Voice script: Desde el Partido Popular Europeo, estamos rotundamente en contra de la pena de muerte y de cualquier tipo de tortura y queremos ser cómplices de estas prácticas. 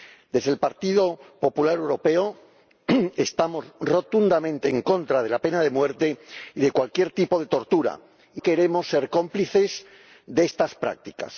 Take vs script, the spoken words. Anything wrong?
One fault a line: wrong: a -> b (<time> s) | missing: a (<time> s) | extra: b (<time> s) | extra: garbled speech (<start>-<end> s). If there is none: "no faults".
no faults